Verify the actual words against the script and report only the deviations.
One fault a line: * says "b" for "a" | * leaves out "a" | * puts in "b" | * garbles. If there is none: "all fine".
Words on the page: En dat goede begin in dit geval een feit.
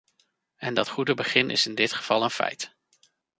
* puts in "is"